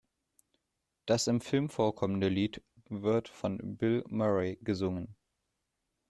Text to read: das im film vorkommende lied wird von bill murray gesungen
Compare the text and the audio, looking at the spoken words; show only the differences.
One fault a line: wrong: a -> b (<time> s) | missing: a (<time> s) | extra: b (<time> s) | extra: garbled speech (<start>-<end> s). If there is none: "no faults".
no faults